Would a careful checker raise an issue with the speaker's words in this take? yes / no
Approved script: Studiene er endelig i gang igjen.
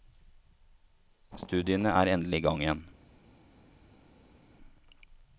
no